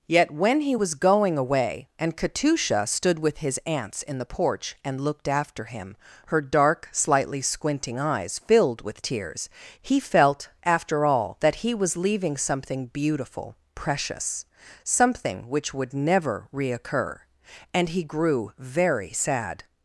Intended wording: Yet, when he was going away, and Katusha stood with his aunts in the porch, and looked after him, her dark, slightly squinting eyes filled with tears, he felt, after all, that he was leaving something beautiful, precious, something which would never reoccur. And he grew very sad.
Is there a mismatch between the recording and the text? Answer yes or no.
no